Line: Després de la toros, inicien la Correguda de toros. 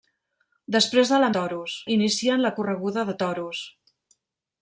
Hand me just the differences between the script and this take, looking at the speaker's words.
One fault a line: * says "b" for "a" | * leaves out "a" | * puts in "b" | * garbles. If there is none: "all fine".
all fine